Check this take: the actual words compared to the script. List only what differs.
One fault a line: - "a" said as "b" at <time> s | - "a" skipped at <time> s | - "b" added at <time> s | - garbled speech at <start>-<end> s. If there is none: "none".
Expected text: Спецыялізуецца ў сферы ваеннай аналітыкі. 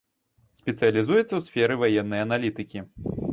none